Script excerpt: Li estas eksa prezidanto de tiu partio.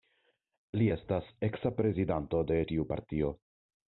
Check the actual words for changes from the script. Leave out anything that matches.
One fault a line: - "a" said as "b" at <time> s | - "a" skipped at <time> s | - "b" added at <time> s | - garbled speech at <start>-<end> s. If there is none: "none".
none